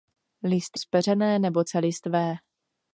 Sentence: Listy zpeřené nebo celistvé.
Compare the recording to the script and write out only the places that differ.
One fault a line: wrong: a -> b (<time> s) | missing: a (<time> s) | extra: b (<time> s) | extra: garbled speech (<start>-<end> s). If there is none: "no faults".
no faults